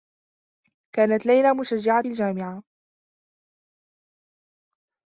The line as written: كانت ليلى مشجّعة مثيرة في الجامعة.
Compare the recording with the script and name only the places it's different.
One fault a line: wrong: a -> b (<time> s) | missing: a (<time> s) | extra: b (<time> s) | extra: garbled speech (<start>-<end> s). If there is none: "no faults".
missing: مثيرة في (2.0 s)